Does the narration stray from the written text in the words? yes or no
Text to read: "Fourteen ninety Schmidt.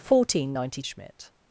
no